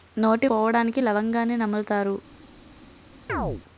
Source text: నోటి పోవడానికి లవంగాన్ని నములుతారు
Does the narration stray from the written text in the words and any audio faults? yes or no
yes